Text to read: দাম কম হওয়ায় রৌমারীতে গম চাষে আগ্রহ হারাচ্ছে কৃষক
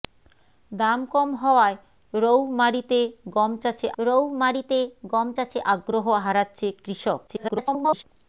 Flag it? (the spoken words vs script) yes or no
yes